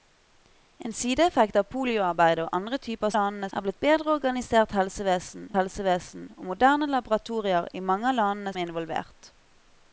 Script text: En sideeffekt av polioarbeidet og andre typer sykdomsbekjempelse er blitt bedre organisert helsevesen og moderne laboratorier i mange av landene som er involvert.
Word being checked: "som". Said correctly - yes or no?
no